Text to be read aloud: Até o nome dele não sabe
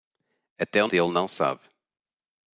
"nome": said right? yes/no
no